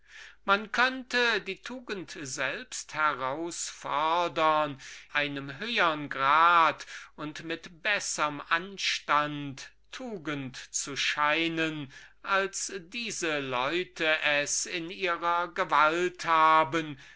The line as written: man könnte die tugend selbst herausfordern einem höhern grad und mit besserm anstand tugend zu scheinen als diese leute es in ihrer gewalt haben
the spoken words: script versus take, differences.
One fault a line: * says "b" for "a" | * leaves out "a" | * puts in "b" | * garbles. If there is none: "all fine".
all fine